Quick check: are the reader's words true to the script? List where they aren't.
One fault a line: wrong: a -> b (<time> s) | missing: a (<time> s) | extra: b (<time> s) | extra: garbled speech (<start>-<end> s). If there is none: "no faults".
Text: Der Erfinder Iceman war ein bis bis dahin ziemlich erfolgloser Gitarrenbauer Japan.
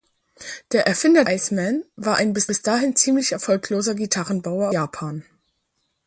no faults